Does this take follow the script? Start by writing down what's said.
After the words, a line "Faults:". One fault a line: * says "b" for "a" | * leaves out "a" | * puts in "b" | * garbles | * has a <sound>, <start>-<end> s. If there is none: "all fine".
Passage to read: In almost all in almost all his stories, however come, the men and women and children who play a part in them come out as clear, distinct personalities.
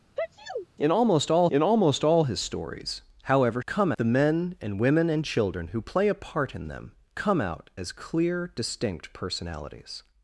In almost all in almost all his stories, however come, the men and women and children who play a part in them come out as clear, distinct personalities.
Faults:
* has a sneeze, 0.2-0.7 s